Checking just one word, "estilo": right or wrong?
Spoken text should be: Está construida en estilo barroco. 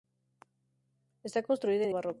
wrong